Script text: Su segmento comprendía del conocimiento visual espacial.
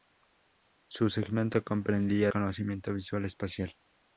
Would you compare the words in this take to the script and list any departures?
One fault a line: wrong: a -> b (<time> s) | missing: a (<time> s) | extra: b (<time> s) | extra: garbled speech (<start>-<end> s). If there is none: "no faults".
missing: del (2.3 s)